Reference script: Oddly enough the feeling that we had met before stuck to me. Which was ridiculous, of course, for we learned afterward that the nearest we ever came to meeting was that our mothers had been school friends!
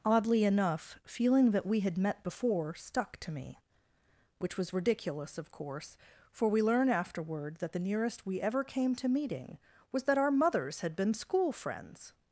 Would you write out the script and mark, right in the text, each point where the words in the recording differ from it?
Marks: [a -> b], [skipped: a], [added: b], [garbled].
Oddly enough [skipped: the] feeling that we had met before stuck to me. Which was ridiculous, of course, for we [learned -> learn] afterward that the nearest we ever came to meeting was that our mothers had been school friends!